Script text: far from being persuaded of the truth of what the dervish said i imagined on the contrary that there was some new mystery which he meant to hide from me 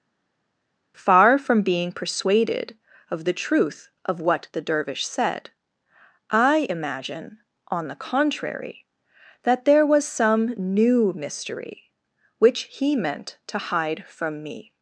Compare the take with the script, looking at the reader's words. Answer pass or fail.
fail